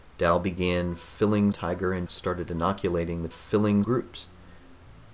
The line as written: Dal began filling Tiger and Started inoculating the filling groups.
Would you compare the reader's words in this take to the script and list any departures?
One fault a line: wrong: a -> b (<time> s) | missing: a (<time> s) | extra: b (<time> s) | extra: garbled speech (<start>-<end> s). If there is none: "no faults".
no faults